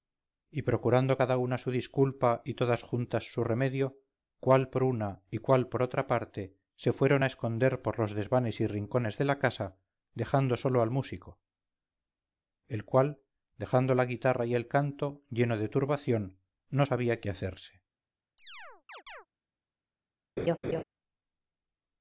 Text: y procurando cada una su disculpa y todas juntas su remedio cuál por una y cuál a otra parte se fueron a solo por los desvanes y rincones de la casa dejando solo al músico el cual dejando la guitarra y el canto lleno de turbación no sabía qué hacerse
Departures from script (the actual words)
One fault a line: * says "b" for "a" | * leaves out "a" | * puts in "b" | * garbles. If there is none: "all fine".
* says "por" for "a"
* says "esconder" for "solo"